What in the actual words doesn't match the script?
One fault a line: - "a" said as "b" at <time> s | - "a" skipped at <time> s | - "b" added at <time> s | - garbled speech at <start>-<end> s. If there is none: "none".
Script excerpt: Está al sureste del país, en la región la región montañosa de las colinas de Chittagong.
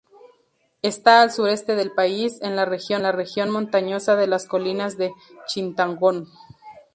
none